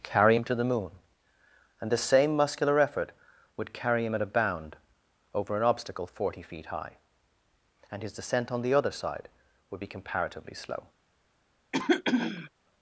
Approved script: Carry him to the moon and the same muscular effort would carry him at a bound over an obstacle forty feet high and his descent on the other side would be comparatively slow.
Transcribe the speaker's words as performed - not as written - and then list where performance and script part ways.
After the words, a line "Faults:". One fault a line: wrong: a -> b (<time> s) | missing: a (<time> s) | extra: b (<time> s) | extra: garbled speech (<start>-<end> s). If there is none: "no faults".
Carry him to the moon and the same muscular effort would carry him at a bound over an obstacle forty feet high and his descent on the other side would be comparatively slow.
Faults:
no faults